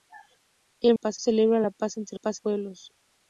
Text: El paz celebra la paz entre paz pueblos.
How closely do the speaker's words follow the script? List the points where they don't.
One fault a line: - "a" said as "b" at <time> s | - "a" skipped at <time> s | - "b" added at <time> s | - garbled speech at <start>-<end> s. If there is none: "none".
none